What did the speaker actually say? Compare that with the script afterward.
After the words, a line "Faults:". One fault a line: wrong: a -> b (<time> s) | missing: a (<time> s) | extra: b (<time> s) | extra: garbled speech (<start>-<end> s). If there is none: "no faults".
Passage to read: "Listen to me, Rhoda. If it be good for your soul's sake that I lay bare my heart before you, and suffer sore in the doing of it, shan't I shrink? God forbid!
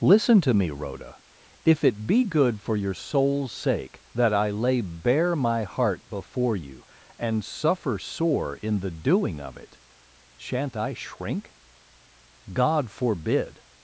"Listen to me, Rhoda. If it be good for your soul's sake that I lay bare my heart before you, and suffer sore in the doing of it, shan't I shrink? God forbid!
Faults:
no faults